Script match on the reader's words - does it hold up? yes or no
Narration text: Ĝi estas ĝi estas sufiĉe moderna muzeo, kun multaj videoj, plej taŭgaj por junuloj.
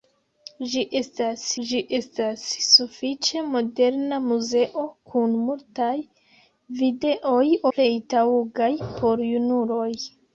yes